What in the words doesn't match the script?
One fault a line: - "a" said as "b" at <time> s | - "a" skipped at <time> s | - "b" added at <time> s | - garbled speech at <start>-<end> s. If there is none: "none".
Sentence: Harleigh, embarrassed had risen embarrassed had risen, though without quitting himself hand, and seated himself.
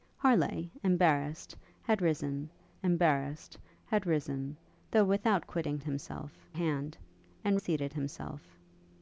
none